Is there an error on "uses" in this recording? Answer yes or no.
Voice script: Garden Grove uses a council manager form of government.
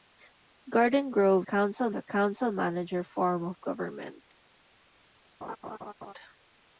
yes